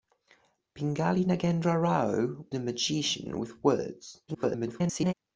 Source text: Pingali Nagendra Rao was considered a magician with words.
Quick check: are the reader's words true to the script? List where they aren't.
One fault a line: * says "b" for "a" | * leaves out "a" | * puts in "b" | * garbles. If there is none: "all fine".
* leaves out "was considered"
* garbles